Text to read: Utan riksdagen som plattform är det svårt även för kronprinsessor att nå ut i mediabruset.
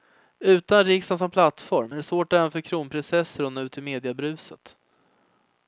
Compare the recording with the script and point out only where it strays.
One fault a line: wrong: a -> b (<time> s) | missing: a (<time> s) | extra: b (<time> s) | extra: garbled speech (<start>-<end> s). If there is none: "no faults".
no faults